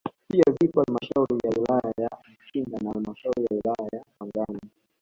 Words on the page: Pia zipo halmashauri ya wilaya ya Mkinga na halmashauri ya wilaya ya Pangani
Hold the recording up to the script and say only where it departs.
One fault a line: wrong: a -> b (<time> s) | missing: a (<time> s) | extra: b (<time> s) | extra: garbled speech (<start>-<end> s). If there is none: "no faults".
no faults